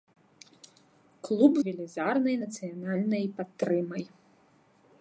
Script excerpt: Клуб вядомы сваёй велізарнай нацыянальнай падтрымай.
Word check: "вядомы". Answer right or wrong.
wrong